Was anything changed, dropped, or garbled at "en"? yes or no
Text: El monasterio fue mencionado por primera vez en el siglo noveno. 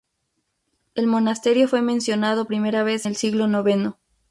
yes